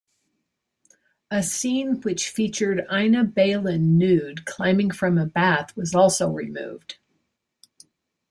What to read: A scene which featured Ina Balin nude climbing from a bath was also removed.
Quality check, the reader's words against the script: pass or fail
pass